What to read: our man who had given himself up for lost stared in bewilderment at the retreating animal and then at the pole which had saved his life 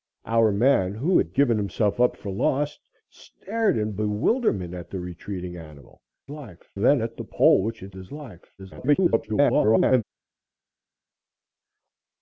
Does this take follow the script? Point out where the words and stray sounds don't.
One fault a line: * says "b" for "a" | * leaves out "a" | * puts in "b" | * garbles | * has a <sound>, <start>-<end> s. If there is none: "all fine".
* says "life" for "and"
* leaves out "saved"
* garbles